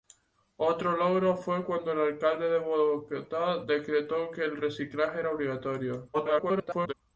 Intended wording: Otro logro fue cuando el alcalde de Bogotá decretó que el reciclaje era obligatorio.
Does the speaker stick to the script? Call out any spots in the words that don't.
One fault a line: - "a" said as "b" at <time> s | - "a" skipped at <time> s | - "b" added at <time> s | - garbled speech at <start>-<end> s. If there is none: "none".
- garbled speech at 6.1-6.9 s